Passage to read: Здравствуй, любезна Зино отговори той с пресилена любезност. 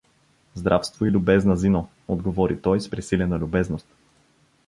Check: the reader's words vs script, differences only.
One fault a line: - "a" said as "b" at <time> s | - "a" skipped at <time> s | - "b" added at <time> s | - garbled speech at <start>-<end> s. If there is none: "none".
none